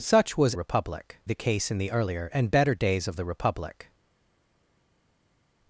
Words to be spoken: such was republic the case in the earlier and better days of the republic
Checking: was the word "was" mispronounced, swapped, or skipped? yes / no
no